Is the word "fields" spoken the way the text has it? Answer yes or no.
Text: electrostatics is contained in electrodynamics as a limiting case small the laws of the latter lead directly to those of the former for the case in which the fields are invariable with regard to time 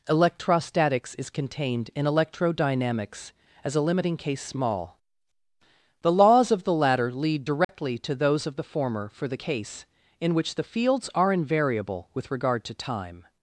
yes